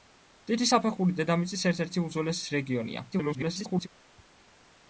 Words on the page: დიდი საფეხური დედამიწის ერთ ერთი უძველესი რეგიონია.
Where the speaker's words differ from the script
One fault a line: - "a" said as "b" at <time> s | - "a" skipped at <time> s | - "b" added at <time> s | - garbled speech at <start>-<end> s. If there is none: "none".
- garbled speech at 3.1-3.9 s